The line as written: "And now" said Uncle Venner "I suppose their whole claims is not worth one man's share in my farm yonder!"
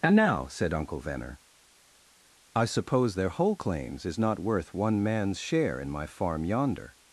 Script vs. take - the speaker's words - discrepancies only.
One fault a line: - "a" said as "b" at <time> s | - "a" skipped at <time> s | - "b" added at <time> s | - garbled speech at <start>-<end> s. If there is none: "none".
none